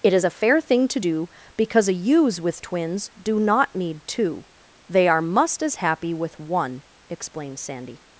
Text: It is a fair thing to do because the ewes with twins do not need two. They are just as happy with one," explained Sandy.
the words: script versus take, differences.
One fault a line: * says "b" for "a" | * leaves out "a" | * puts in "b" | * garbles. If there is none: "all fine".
* says "a" for "the"
* says "must" for "just"